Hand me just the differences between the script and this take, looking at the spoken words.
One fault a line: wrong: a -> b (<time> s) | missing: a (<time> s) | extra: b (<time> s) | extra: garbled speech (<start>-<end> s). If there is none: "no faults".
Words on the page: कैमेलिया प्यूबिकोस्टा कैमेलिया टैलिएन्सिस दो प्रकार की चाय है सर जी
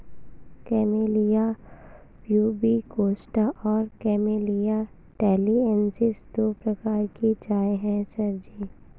extra: और (3.6 s)